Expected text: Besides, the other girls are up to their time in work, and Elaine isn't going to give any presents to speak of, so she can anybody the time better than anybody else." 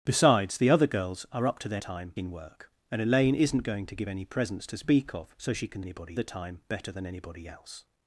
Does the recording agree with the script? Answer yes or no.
yes